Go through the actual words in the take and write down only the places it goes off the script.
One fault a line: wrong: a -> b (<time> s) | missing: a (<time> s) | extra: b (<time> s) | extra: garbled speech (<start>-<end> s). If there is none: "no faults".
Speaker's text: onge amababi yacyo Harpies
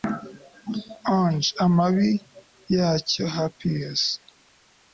no faults